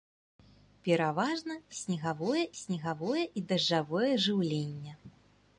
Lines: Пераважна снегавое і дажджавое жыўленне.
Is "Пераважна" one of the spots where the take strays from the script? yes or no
no